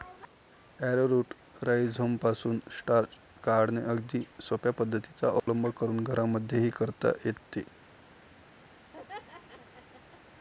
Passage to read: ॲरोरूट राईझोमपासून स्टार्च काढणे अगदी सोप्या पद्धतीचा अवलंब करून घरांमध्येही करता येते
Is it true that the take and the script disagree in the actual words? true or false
false